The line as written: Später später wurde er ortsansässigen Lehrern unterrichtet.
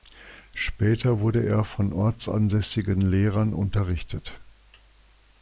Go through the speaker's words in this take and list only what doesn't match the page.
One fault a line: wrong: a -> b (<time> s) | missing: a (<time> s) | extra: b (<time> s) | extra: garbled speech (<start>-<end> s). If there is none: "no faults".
missing: später (1.2 s)
extra: von (1.6 s)